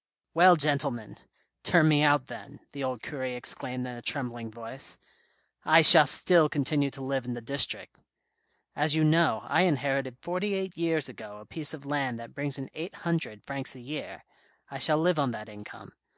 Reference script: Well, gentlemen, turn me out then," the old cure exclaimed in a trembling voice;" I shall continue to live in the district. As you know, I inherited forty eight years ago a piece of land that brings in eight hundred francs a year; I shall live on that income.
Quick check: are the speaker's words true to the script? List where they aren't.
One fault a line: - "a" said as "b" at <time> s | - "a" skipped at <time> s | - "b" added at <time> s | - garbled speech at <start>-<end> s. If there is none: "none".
- "still" added at 6.1 s